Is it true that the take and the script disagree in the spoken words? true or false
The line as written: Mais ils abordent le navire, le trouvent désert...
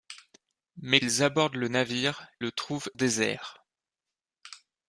false